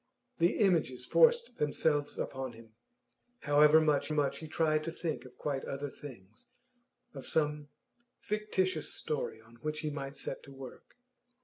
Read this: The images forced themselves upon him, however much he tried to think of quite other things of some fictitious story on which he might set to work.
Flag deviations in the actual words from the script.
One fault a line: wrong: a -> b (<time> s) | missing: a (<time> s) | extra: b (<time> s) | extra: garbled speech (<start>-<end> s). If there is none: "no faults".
extra: much (4.1 s)